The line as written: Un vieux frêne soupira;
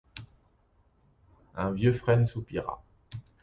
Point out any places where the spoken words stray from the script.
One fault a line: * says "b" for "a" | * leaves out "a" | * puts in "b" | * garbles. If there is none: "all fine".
all fine